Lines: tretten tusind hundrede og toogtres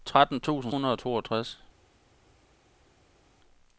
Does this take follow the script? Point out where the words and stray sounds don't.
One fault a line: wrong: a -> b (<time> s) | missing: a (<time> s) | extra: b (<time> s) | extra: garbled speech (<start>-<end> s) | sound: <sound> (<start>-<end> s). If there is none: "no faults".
no faults